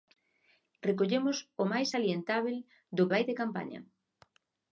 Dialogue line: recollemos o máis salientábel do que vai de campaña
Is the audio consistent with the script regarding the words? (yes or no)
no